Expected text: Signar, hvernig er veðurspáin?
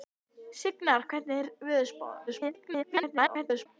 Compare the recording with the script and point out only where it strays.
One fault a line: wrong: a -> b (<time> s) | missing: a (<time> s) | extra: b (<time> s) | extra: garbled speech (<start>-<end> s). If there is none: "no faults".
extra: garbled speech (2.3-3.7 s)